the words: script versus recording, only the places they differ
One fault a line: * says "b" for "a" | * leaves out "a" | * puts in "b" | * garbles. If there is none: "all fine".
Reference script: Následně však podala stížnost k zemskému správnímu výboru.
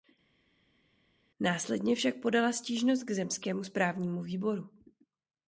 all fine